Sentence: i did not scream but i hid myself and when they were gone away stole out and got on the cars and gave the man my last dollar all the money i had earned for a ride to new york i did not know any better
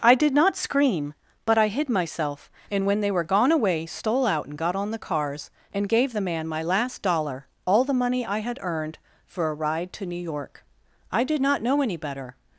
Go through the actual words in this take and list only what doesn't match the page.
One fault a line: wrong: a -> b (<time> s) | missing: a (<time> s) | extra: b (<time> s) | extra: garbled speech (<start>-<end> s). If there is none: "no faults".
no faults